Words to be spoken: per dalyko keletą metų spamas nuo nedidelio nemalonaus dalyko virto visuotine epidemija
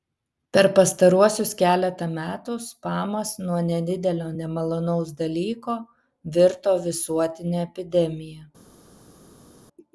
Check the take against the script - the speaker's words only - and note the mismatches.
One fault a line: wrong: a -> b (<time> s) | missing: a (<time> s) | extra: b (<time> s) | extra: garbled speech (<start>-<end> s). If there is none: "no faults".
wrong: dalyko -> pastaruosius (0.8 s)